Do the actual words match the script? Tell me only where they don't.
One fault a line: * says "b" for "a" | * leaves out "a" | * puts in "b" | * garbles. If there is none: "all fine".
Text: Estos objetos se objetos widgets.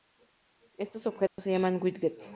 * says "llaman" for "objetos"